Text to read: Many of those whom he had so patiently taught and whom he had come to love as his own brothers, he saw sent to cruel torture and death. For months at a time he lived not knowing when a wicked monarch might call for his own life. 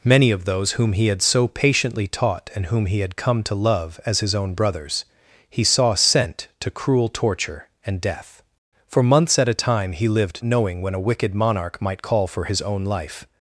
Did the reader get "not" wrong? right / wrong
wrong